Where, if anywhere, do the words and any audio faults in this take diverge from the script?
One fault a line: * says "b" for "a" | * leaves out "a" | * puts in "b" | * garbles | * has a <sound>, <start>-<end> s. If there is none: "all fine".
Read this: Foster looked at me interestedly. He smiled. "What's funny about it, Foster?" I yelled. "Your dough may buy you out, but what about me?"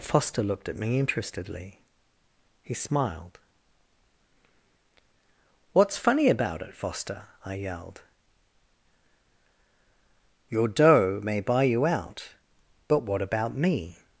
all fine